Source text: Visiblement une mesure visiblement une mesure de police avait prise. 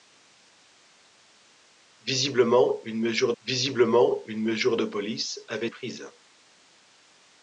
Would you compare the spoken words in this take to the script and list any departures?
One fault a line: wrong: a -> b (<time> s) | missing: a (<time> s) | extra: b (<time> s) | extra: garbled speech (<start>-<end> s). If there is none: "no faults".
no faults